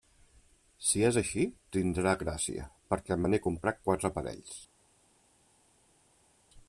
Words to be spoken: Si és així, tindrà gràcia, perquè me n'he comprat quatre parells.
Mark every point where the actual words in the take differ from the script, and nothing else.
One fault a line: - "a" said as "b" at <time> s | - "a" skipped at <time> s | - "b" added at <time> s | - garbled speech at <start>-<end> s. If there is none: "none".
none